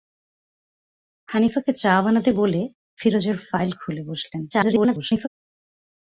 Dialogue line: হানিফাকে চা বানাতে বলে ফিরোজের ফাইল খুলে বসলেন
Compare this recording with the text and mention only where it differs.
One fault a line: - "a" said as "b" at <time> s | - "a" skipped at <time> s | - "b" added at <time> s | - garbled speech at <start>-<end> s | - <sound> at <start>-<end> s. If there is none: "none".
- garbled speech at 4.5-5.3 s